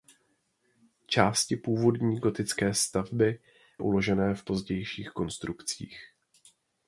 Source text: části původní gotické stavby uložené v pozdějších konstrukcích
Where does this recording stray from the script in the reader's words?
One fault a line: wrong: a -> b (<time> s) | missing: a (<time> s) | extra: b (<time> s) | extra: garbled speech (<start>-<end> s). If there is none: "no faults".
no faults